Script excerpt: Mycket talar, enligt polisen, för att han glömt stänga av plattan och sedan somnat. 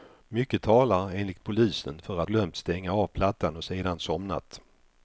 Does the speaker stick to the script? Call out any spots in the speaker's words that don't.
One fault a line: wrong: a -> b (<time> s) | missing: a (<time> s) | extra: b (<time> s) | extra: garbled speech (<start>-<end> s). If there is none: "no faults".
missing: han (2.3 s)